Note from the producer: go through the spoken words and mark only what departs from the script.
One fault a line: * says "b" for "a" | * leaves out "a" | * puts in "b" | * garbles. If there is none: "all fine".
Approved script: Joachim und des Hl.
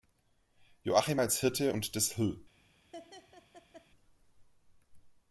* puts in "als Hirte"